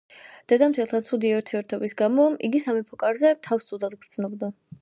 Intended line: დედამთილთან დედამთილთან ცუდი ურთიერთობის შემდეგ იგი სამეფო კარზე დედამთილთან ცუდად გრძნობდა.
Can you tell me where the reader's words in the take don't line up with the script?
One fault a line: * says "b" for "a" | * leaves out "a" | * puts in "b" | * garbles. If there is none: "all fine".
* leaves out "დედამთილთან"
* says "გამო" for "შემდეგ"
* says "თავს" for "დედამთილთან"